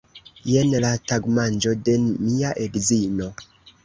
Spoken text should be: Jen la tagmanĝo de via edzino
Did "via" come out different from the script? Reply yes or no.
yes